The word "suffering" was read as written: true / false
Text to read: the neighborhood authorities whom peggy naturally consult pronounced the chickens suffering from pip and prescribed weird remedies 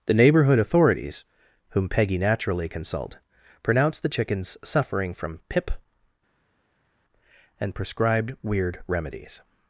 true